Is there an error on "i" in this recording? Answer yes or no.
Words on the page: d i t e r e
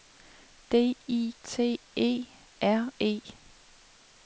no